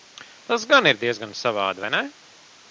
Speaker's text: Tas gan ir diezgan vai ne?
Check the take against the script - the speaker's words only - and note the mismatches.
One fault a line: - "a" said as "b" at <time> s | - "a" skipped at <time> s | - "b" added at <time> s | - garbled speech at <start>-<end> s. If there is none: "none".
- "savādi" added at 1.4 s